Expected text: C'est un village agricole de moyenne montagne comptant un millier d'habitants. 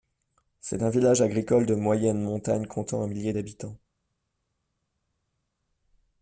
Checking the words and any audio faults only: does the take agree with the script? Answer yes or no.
yes